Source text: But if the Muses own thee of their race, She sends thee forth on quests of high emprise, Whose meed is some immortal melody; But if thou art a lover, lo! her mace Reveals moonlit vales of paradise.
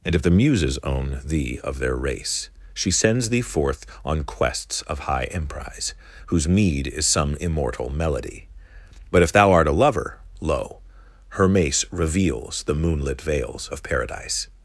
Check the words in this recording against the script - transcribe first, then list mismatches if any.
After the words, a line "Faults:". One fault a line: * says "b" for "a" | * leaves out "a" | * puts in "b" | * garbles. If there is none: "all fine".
And if the Muses own thee of their race, She sends thee forth on quests of high emprise, Whose meed is some immortal melody; But if thou art a lover, lo! her mace Reveals the moonlit vales of paradise.
Faults:
* says "And" for "But"
* puts in "the"